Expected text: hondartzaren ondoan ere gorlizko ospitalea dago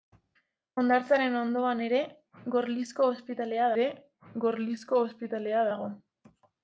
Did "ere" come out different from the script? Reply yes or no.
no